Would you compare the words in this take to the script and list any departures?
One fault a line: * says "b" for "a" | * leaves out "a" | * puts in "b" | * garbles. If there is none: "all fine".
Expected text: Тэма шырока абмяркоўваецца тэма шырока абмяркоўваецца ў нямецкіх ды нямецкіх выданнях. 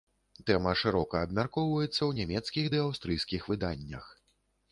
* leaves out "тэма шырока абмяркоўваецца"
* says "аўстрыйскіх" for "нямецкіх"